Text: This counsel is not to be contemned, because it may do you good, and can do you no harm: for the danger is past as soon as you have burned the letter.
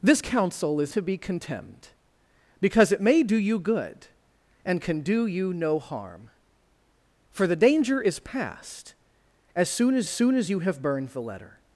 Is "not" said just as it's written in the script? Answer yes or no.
no